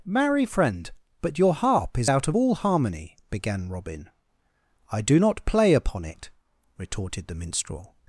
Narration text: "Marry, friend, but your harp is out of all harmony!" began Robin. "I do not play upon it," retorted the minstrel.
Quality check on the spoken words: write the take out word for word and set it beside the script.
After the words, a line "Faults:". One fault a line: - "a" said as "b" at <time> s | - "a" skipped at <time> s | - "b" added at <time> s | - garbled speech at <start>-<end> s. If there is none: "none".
"Marry, friend, but your harp is out of all harmony!" began Robin. "I do not play upon it," retorted the minstrel.
Faults:
none